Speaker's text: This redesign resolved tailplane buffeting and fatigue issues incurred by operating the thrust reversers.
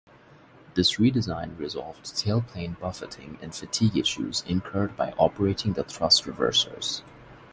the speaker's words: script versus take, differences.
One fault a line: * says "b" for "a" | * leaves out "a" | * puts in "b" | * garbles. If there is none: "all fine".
all fine